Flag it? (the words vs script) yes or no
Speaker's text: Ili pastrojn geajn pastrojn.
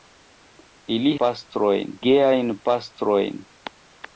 no